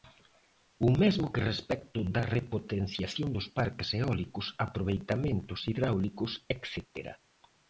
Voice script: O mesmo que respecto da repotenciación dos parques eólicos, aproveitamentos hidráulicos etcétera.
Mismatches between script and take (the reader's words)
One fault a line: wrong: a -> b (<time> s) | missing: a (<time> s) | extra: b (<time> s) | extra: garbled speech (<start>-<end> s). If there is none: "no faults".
no faults